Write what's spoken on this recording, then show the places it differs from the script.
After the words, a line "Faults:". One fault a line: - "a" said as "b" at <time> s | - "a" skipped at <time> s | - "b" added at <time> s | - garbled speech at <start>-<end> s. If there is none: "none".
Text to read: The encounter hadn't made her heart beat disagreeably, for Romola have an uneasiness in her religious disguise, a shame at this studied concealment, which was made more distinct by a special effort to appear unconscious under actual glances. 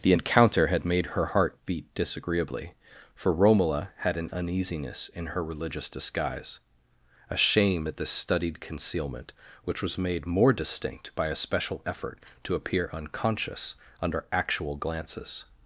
The encounter had made her heart beat disagreeably, for Romola had an uneasiness in her religious disguise, a shame at this studied concealment, which was made more distinct by a special effort to appear unconscious under actual glances.
Faults:
- "hadn't" said as "had" at 0.7 s
- "have" said as "had" at 4.0 s